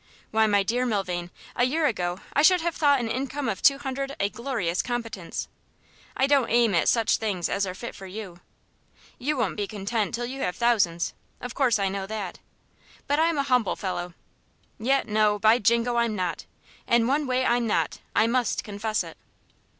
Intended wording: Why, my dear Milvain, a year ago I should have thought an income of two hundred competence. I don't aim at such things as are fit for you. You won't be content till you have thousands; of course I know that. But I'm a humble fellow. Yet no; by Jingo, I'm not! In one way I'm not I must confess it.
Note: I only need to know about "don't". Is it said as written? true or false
true